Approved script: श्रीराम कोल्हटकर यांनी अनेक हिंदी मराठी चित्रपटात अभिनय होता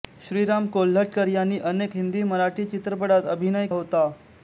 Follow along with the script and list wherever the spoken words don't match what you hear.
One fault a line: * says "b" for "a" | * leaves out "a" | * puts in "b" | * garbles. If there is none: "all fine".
all fine